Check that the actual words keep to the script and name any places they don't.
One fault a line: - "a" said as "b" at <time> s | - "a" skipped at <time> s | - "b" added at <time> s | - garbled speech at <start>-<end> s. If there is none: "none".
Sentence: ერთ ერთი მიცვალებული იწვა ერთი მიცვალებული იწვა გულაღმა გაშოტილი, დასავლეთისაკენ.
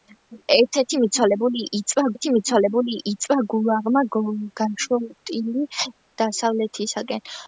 none